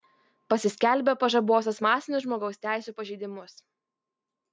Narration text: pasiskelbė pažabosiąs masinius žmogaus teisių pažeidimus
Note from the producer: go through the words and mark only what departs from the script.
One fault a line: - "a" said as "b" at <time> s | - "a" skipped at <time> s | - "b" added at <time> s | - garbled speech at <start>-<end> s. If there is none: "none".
none